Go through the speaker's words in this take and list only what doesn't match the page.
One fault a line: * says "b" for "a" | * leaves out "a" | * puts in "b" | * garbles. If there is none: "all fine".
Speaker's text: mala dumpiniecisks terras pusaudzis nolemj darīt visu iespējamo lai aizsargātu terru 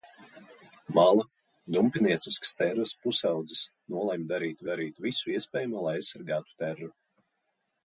* puts in "darīt"